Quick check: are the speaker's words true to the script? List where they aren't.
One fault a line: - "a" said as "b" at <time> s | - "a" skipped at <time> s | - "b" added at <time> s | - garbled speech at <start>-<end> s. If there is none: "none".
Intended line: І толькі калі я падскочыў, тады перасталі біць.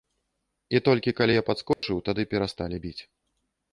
none